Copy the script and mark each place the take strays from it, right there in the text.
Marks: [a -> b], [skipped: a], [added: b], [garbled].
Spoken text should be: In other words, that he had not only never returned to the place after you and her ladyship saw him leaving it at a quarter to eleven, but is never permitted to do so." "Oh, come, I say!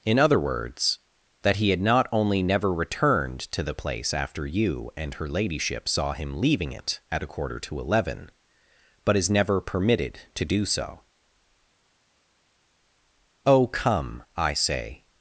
In other words, that he had not only never returned to the place after you and her ladyship saw him leaving it at a quarter to eleven, but is never permitted to do so." "Oh, come, I say!